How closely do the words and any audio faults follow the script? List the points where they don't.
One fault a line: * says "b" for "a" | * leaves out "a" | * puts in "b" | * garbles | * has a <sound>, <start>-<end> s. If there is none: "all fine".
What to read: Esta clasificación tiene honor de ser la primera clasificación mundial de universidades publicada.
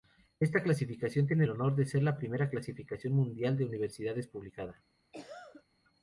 * has a cough, 5.1-5.6 s